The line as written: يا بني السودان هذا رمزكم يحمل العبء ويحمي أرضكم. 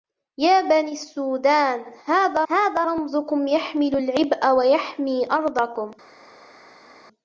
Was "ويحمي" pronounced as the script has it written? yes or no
yes